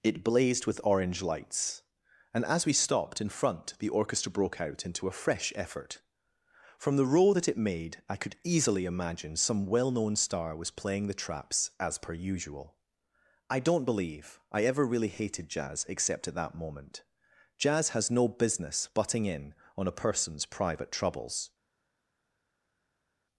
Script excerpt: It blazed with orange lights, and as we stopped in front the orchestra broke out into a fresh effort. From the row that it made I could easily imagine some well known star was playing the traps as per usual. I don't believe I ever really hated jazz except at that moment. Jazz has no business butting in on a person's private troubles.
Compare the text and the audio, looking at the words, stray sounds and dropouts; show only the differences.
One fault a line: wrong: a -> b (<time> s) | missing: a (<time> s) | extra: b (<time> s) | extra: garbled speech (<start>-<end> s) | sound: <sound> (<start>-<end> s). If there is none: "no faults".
no faults